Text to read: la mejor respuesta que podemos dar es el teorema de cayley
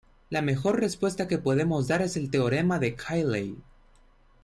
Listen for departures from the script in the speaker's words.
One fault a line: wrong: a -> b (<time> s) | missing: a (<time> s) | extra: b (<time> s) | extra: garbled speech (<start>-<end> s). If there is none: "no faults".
no faults